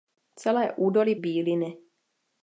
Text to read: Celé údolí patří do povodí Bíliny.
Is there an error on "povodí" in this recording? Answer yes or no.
yes